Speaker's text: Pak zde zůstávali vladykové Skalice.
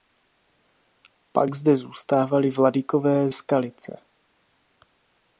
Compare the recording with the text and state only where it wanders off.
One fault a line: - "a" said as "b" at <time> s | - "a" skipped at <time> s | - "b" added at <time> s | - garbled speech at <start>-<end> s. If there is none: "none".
none